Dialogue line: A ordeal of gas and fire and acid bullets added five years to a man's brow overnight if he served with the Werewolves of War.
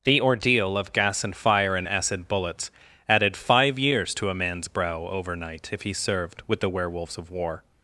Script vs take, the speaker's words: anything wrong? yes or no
yes